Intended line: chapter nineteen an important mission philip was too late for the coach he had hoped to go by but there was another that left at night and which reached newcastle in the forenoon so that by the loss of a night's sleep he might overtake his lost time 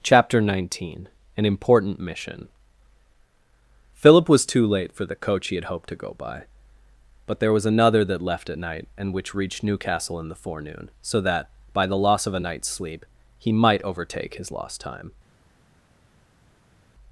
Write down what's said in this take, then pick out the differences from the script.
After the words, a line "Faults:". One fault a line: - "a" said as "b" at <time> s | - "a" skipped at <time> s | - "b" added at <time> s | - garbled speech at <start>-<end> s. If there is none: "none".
chapter nineteen an important mission philip was too late for the coach he had hoped to go by but there was another that left at night and which reached newcastle in the forenoon so that by the loss of a night's sleep he might overtake his lost time
Faults:
none